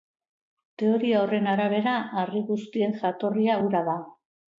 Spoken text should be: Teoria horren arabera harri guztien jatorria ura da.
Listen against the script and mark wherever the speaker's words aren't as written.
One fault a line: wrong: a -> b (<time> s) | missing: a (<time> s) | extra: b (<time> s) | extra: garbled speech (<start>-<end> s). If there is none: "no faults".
no faults